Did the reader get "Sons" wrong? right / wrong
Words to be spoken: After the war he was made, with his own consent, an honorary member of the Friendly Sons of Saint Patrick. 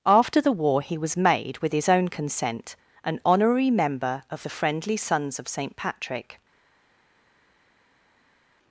right